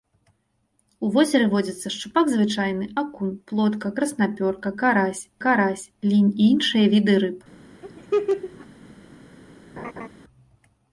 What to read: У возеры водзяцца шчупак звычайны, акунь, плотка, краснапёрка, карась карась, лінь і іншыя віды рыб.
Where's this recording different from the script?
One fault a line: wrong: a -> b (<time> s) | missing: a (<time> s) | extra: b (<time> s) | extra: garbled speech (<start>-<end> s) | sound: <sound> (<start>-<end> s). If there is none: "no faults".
sound: laugh (7.8-8.7 s)
sound: laugh (9.8-10.1 s)